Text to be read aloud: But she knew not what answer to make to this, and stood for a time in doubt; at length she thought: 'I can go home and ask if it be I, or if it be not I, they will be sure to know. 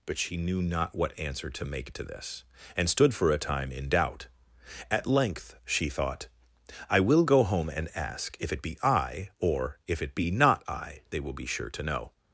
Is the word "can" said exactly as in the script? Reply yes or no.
no